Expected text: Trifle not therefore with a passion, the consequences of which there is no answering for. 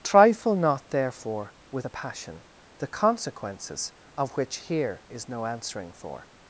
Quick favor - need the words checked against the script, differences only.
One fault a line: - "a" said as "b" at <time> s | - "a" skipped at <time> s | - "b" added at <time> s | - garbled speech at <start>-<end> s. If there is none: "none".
- "there" said as "here" at 4.6 s